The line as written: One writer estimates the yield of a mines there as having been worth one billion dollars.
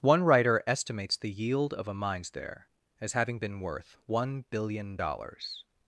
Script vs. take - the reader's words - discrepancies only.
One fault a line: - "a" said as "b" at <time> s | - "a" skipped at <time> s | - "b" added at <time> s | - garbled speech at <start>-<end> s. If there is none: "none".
none